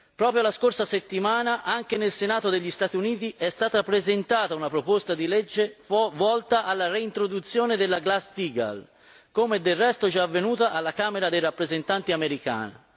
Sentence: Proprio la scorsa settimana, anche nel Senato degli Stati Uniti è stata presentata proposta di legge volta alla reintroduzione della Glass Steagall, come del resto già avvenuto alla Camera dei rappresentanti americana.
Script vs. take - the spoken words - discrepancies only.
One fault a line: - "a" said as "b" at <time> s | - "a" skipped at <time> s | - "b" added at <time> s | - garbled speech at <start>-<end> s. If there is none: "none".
- "una" added at 4.5 s